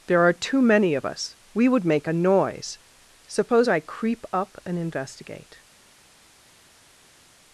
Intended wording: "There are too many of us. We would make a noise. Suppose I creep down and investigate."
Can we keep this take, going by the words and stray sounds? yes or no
no